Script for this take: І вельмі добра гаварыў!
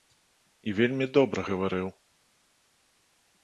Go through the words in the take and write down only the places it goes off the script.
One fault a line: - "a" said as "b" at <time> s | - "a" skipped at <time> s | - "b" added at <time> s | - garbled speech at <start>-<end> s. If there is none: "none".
none